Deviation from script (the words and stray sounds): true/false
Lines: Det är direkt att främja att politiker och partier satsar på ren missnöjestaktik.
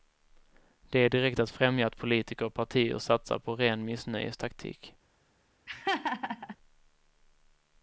true